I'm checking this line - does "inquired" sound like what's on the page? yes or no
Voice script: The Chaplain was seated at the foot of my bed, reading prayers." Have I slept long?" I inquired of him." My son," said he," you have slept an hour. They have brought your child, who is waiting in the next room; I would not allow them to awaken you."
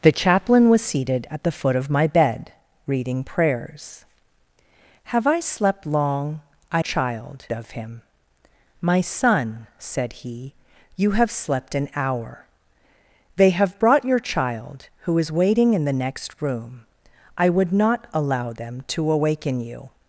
no